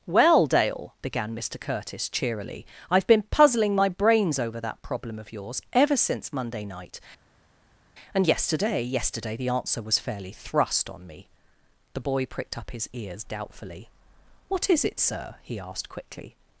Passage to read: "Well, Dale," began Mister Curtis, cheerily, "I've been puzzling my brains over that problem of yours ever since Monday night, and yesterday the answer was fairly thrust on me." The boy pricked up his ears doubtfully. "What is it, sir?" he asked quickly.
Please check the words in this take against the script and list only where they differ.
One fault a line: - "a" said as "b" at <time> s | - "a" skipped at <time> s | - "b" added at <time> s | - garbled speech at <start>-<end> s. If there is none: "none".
- "yesterday" added at 8.8 s